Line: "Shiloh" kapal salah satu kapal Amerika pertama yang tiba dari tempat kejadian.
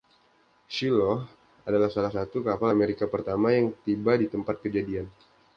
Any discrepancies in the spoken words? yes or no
yes